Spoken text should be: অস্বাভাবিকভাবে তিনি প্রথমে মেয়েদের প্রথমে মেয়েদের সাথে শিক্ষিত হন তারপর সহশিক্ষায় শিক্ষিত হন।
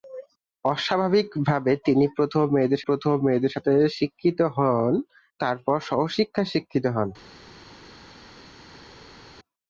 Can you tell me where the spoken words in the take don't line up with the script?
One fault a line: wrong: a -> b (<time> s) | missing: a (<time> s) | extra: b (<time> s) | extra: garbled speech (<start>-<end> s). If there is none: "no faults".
no faults